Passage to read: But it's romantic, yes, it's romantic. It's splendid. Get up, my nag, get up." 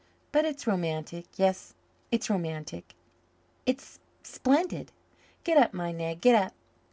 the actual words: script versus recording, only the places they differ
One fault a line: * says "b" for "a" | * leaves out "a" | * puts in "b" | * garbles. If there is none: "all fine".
all fine